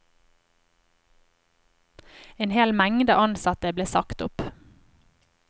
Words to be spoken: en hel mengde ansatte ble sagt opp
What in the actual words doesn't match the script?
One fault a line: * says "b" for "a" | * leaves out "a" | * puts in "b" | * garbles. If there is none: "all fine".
all fine